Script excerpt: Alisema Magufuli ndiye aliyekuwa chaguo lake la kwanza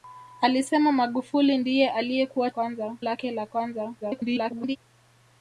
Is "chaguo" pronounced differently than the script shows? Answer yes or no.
yes